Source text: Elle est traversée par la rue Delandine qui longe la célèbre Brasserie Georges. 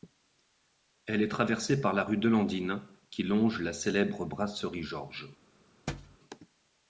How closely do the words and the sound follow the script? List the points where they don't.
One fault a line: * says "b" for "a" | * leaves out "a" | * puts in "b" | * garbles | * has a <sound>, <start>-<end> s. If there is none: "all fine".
* has a thud, 5.9-6.2 s